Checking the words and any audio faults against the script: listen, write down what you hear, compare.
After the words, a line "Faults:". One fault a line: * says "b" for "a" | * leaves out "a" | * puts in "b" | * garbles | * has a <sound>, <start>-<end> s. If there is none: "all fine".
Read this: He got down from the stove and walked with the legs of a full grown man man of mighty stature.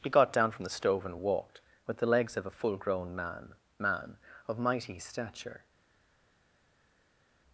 He got down from the stove and walked with the legs of a full grown man man of mighty stature.
Faults:
all fine